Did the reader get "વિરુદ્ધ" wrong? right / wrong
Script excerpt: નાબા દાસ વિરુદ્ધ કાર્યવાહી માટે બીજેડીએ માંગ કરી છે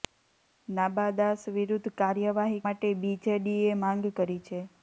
right